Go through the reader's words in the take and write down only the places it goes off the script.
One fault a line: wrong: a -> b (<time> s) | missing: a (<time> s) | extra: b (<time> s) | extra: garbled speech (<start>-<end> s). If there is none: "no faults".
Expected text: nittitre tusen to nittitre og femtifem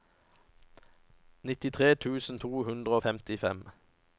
wrong: nittitre -> hundre (2.6 s)